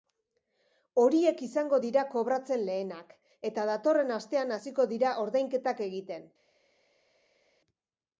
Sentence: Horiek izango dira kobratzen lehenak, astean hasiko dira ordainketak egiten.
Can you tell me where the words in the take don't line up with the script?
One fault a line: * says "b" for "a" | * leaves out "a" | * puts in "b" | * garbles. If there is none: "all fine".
* puts in "eta datorren"